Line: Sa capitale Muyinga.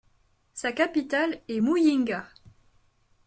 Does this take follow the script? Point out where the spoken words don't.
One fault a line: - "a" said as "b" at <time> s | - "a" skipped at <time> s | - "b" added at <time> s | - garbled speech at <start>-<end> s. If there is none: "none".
- "est" added at 1.5 s